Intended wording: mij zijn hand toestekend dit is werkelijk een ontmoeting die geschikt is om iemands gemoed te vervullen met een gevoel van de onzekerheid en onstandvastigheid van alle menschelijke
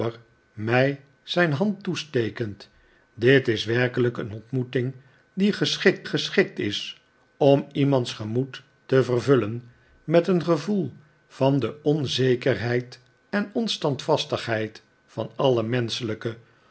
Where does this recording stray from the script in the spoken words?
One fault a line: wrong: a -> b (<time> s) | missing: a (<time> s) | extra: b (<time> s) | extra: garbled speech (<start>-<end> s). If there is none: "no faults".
extra: geschikt (6.1 s)